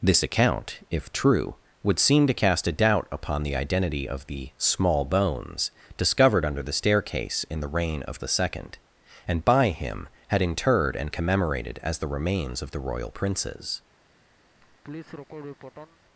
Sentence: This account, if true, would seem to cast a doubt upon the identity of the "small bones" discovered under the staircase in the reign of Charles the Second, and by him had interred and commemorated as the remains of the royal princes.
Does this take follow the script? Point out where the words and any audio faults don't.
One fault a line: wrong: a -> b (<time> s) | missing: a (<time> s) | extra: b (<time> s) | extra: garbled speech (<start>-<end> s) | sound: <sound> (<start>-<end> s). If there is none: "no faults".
missing: Charles (8.2 s)
sound: laugh (14.6-16.0 s)